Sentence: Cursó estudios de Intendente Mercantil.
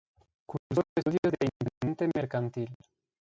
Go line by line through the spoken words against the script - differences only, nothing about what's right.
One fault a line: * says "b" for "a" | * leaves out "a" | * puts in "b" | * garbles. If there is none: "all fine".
all fine